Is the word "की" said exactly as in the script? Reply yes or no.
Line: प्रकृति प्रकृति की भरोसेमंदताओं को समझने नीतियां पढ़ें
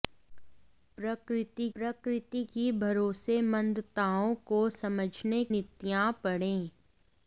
yes